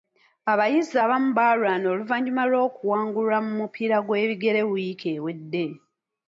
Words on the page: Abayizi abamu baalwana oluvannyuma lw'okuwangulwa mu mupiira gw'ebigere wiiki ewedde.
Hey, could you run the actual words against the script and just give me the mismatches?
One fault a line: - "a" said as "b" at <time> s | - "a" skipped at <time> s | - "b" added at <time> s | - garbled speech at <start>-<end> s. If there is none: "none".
none